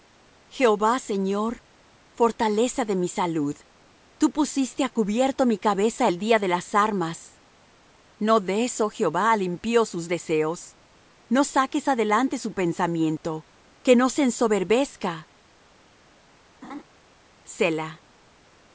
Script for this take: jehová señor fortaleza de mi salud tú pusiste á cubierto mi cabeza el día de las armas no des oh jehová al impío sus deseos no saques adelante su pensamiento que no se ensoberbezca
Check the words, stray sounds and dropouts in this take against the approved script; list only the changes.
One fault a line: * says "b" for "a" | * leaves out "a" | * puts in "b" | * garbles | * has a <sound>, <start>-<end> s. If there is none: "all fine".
* has a laugh, 16.6-16.8 s